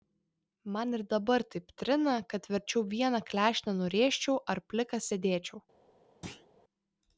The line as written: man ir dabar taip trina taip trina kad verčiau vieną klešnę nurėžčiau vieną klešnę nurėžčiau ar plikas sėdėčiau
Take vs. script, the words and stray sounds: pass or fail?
fail